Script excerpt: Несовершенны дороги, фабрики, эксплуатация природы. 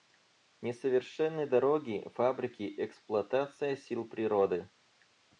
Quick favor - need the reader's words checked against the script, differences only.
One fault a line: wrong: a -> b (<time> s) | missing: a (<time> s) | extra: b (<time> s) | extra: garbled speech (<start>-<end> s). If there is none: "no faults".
extra: сил (3.8 s)